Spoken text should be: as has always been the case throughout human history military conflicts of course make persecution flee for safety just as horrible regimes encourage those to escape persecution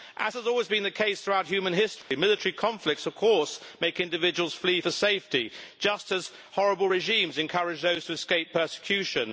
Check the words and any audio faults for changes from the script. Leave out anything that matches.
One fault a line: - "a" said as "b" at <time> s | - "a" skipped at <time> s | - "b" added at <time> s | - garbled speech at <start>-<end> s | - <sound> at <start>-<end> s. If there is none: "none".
- dropout at 2.0-2.1 s
- "persecution" said as "individuals" at 4.0 s